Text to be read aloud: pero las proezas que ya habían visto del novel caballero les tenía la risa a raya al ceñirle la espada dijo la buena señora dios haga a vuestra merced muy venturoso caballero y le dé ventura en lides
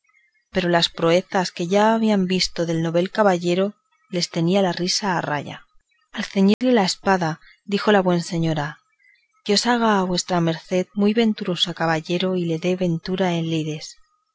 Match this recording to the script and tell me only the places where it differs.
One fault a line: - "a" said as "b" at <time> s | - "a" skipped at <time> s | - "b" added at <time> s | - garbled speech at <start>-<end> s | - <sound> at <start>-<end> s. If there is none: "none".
- dropout at 6.5-6.6 s